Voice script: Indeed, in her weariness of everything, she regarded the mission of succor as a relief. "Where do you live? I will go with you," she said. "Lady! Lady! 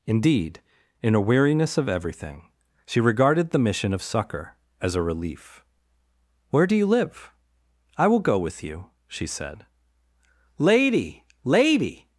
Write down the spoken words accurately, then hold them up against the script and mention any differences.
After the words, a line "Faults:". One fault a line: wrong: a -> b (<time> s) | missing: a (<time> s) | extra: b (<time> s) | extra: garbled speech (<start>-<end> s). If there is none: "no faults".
Indeed, in a weariness of everything, she regarded the mission of succor as a relief. "Where do you live? I will go with you," she said. "Lady! Lady!
Faults:
wrong: her -> a (1.1 s)